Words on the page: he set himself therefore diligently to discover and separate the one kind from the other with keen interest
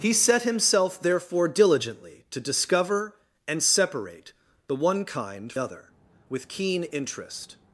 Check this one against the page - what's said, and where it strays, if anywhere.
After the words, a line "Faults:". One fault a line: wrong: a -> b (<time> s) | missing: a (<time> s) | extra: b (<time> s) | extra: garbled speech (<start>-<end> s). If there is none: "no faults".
he set himself therefore diligently to discover and separate the one kind other with keen interest
Faults:
missing: from the (5.5 s)